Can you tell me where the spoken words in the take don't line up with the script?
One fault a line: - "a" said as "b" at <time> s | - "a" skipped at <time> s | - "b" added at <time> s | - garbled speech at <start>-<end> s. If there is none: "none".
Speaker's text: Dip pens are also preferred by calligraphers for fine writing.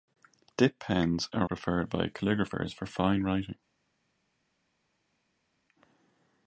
- "also" skipped at 1.4 s